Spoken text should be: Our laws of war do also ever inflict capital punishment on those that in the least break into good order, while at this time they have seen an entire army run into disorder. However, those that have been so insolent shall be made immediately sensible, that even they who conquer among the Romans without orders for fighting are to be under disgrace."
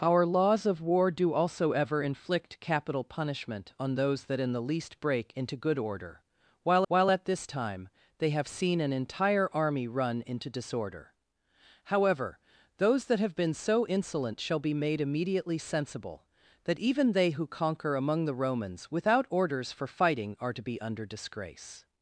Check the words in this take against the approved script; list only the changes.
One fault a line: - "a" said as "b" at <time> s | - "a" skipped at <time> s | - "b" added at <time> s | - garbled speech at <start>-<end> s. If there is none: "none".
- "while" added at 6.9 s